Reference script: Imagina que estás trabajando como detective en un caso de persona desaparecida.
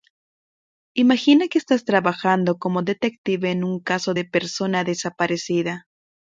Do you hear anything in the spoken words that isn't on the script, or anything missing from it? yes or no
no